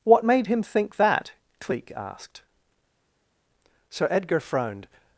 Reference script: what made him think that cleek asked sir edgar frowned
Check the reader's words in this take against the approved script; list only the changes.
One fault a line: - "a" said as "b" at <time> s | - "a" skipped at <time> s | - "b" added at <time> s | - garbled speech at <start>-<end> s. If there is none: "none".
none